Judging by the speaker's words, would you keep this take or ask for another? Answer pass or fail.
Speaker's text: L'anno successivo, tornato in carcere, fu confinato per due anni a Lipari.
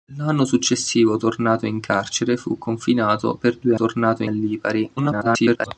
fail